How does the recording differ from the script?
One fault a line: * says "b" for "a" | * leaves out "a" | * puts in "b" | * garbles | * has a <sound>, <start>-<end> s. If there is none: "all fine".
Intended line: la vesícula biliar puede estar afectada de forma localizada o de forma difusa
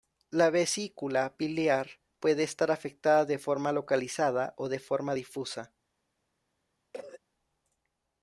* has a cough, 6.9-7.2 s